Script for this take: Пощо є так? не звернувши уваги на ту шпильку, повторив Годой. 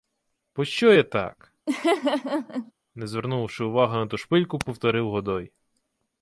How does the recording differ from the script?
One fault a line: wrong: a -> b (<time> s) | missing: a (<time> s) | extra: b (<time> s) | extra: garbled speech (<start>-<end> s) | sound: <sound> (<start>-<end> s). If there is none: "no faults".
sound: laugh (1.7-2.7 s)